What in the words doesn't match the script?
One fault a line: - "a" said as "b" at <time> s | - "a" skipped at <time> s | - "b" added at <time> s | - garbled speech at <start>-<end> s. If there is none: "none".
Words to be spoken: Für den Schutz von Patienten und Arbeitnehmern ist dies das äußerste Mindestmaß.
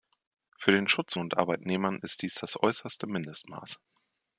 - "von Patienten" skipped at 1.1 s